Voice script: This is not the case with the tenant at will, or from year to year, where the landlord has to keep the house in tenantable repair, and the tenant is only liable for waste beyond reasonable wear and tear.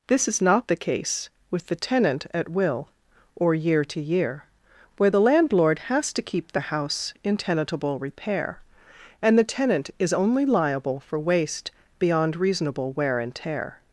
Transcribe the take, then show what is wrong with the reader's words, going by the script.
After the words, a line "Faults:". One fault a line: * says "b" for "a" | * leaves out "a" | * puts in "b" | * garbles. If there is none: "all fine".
This is not the case with the tenant at will, or year to year, where the landlord has to keep the house in tenantable repair, and the tenant is only liable for waste beyond reasonable wear and tear.
Faults:
* leaves out "from"